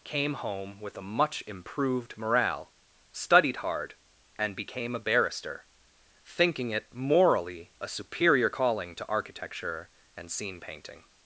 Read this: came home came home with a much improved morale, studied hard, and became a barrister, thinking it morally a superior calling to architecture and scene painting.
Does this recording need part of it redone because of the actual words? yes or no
yes